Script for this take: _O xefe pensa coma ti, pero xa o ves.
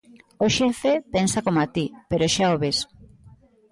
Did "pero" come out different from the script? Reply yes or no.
no